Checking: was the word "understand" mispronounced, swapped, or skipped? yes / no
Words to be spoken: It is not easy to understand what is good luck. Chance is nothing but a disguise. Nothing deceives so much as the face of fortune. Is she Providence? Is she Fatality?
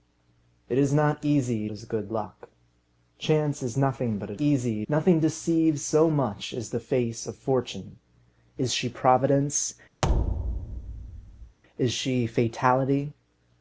yes